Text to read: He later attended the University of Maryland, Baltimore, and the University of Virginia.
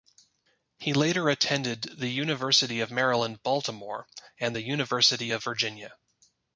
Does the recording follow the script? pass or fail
pass